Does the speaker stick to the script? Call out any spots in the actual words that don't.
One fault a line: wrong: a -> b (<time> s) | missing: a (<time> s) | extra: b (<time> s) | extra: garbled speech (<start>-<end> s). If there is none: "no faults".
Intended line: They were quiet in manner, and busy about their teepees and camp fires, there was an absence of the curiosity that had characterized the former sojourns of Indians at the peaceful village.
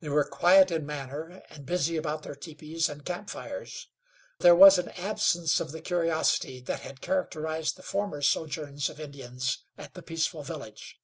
no faults